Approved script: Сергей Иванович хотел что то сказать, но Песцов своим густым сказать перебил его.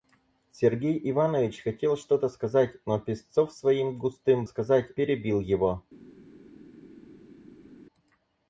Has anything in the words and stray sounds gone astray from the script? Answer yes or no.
no